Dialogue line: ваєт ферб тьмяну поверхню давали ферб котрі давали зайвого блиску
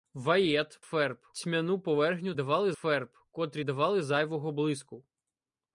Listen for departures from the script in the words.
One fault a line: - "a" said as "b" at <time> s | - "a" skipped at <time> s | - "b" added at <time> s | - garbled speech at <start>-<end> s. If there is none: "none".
none